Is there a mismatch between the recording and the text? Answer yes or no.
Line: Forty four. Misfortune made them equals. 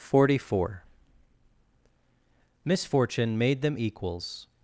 no